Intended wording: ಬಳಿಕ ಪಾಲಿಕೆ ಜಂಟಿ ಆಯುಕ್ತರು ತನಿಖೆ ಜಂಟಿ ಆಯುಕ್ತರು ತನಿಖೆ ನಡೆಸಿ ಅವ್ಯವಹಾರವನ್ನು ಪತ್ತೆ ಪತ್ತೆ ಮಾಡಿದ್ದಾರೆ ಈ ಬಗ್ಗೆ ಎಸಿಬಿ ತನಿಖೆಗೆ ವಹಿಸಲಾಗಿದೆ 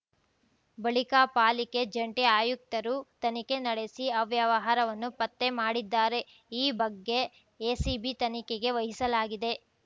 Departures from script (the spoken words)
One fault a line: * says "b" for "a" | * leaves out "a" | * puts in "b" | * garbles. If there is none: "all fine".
* leaves out "ಜಂಟಿ ಆಯುಕ್ತರು ತನಿಖೆ"
* leaves out "ಪತ್ತೆ"